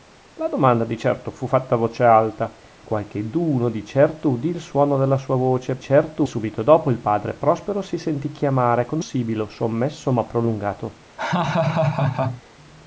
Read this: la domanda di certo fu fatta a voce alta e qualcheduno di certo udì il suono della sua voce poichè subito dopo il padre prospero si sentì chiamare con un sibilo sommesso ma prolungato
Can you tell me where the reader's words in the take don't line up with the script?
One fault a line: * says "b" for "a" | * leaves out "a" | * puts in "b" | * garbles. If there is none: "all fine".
* leaves out "e"
* says "certo" for "poichè"
* leaves out "un"